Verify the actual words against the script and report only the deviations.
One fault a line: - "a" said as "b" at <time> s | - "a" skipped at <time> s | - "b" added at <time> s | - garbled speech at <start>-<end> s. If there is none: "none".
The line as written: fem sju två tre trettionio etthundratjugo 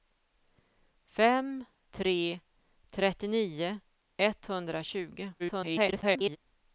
- "sju två" skipped at 1.6 s
- garbled speech at 5.4-6.4 s